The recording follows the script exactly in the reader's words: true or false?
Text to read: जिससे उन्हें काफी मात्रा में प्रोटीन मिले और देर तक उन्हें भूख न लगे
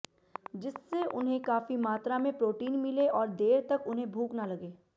true